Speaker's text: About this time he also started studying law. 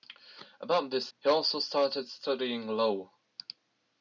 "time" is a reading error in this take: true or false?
true